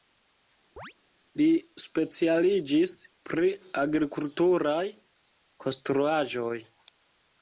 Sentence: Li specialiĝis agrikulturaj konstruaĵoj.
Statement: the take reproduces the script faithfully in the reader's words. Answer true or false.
false